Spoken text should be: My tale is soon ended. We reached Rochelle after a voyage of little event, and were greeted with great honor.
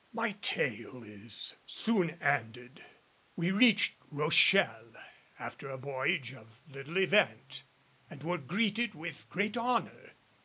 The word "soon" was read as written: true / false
true